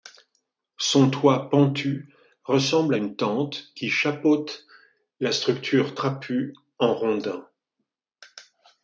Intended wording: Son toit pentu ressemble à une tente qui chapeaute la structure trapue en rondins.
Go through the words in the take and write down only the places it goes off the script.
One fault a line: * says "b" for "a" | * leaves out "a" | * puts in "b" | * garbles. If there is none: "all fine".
all fine